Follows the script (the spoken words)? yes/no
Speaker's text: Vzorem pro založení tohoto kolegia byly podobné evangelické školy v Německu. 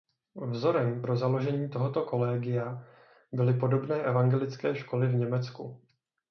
yes